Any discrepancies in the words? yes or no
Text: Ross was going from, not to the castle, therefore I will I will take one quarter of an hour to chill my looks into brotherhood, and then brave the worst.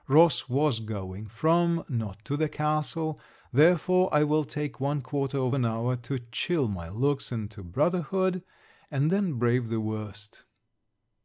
yes